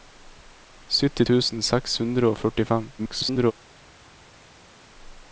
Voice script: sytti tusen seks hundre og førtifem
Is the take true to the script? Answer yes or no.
no